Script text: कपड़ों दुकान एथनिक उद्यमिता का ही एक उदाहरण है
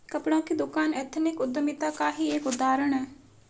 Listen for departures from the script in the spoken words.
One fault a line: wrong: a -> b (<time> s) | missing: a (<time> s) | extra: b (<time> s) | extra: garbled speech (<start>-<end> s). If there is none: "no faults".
extra: की (0.4 s)